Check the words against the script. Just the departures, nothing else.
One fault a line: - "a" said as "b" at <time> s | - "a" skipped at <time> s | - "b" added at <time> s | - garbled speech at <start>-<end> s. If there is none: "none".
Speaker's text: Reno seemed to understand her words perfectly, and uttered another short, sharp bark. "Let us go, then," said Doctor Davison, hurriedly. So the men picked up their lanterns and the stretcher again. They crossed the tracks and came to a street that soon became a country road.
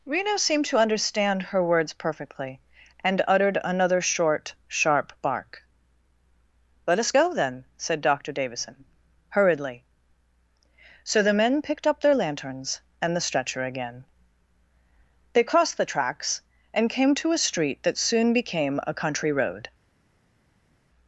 none